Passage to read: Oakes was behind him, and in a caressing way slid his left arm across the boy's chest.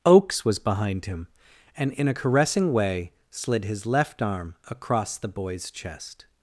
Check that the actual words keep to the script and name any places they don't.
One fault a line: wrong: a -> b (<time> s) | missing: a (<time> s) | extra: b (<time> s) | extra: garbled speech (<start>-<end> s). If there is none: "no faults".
no faults